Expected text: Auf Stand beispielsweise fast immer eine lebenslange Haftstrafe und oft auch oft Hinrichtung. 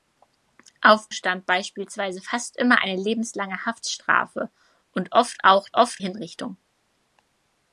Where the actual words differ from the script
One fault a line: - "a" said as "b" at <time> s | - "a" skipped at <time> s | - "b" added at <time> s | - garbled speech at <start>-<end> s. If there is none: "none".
none